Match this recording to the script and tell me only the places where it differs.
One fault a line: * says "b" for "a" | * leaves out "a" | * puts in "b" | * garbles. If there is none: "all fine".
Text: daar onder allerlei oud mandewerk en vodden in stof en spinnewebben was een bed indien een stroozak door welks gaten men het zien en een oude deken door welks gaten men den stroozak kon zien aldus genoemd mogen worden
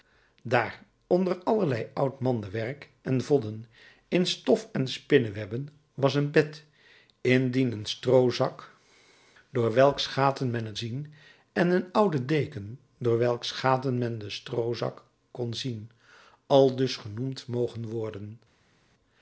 all fine